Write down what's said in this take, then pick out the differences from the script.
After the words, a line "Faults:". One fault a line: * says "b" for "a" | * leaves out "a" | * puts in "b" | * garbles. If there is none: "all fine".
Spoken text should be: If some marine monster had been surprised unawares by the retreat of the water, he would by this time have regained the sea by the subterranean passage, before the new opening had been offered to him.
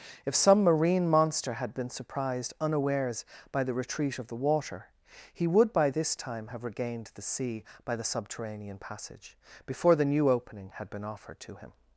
If some marine monster had been surprised unawares by the retreat of the water, he would by this time have regained the sea by the subterranean passage, before the new opening had been offered to him.
Faults:
all fine